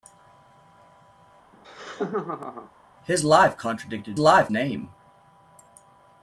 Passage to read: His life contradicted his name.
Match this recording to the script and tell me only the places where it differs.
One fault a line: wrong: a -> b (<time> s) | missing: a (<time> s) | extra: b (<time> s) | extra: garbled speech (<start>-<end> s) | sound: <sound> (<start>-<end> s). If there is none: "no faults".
sound: laugh (1.5-2.7 s)
wrong: his -> life (4.2 s)